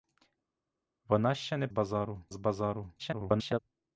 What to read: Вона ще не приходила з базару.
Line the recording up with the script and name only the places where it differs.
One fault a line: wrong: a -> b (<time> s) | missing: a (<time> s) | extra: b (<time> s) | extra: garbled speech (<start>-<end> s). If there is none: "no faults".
wrong: приходила -> базару (1.7 s)
extra: garbled speech (3.0-3.6 s)